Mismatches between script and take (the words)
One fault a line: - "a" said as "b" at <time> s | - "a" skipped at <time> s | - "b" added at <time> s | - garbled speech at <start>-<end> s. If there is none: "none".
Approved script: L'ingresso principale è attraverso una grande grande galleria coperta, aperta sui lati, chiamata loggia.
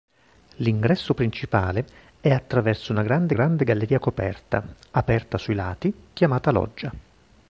none